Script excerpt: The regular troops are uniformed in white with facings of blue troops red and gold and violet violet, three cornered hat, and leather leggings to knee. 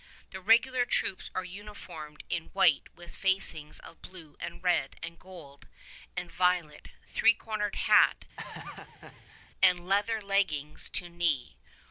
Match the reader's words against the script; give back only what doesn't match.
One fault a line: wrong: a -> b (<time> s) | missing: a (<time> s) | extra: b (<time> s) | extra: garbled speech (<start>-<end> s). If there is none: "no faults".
wrong: troops -> and (4.4 s)
missing: violet (6.9 s)